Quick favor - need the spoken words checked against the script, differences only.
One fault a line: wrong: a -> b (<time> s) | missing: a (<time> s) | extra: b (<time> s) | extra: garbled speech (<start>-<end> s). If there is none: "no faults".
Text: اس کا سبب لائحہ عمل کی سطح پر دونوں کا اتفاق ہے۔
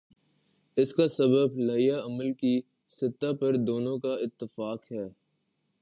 no faults